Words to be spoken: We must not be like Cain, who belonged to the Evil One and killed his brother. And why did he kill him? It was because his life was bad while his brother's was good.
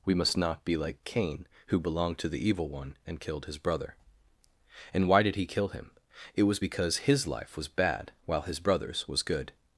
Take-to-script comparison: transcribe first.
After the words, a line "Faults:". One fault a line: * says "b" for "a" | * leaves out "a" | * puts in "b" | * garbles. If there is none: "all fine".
We must not be like Cain, who belonged to the Evil One and killed his brother. And why did he kill him? It was because his life was bad while his brother's was good.
Faults:
all fine